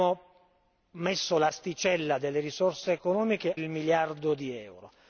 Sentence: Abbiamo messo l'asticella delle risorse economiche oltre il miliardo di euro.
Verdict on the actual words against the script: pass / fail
fail